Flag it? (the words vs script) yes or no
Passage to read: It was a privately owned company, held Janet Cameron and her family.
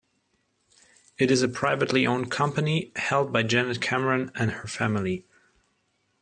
yes